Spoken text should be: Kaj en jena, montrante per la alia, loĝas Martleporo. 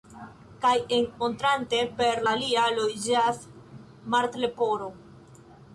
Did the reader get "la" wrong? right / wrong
wrong